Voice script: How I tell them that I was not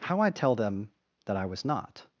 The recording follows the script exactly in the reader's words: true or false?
true